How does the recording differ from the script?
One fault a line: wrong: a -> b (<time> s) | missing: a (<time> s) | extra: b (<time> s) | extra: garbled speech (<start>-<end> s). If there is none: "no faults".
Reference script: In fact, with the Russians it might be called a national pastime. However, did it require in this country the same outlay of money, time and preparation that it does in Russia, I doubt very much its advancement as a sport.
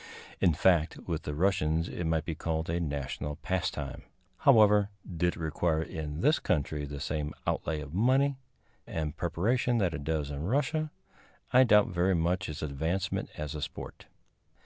missing: time (8.4 s)